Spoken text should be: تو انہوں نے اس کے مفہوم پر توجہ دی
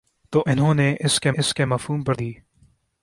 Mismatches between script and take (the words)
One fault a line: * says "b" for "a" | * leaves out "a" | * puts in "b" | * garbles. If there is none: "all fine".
* puts in "اس کے"
* leaves out "توجہ"